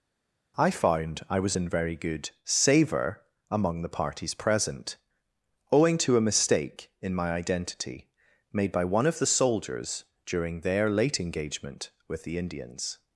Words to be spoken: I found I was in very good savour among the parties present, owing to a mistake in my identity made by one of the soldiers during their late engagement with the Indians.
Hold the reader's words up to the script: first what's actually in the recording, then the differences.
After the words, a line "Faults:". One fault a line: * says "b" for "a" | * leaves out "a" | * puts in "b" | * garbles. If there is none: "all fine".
I found I was in very good savour among the parties present, owing to a mistake in my identity made by one of the soldiers during their late engagement with the Indians.
Faults:
all fine